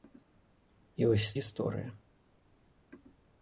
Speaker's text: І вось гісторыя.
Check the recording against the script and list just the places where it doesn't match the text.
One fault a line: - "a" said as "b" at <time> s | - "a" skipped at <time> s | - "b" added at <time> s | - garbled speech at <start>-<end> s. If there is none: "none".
none